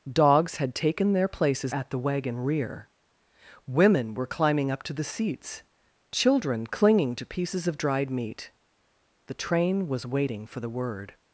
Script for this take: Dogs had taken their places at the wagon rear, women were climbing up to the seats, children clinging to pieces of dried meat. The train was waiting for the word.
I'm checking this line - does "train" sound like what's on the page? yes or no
yes